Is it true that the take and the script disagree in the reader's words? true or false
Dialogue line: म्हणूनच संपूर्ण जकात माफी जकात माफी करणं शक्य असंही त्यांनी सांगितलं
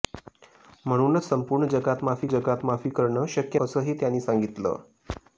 false